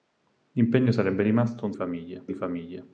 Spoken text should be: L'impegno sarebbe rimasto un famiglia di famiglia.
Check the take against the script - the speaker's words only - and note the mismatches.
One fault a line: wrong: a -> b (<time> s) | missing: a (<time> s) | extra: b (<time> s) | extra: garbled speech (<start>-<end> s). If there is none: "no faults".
no faults